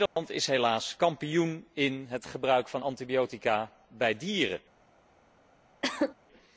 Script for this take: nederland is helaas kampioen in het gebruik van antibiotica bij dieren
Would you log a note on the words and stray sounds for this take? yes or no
yes